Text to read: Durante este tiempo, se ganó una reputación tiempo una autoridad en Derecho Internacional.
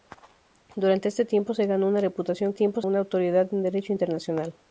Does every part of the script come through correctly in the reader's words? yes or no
yes